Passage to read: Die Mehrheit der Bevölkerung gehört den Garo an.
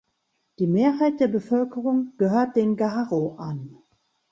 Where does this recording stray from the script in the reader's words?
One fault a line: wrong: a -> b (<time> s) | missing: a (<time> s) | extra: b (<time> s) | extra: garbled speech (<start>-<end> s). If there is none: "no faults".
no faults